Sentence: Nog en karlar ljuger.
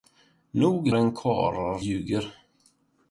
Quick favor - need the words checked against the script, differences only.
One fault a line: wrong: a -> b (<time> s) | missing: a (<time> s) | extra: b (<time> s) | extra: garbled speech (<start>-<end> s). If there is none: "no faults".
no faults